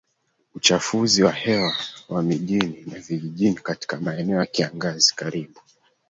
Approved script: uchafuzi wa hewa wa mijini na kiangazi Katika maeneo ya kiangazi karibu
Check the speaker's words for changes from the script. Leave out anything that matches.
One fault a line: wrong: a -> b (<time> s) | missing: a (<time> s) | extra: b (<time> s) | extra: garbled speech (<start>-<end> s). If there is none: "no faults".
wrong: kiangazi -> vijijini (3.0 s)